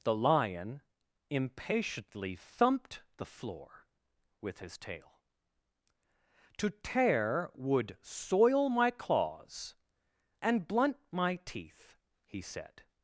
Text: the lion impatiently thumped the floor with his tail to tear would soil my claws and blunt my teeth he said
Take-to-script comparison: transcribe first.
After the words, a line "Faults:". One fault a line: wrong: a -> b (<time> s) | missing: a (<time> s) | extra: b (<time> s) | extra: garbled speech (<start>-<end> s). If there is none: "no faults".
the lion impatiently thumped the floor with his tail to tear would soil my claws and blunt my teeth he said
Faults:
no faults